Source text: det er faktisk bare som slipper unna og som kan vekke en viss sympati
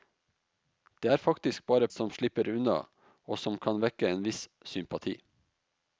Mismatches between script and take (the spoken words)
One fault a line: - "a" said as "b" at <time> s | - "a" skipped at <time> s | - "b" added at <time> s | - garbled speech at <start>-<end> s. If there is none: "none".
none